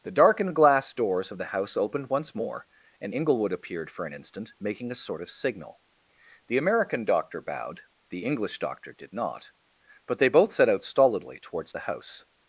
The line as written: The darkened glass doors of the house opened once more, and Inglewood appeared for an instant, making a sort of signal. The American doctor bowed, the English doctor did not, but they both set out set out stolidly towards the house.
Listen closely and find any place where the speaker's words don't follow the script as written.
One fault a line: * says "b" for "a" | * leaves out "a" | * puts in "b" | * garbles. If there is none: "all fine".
* leaves out "set out"